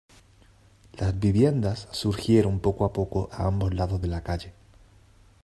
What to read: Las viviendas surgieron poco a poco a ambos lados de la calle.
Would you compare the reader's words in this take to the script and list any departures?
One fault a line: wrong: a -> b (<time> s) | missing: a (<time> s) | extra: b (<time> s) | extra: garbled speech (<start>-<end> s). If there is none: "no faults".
no faults